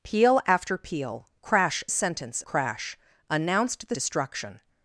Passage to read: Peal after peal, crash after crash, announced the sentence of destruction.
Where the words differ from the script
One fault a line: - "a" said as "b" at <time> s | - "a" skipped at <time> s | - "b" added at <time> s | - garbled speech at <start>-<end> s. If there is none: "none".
- "after" said as "sentence" at 1.9 s
- "sentence of" skipped at 3.9 s